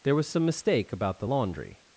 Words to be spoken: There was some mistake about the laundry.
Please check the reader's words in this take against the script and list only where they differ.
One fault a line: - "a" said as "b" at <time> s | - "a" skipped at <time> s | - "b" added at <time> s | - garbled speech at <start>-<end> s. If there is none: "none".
none